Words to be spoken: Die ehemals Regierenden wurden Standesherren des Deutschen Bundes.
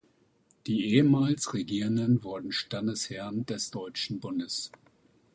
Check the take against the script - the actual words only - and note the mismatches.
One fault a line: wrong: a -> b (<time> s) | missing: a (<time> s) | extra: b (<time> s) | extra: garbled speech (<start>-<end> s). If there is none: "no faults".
no faults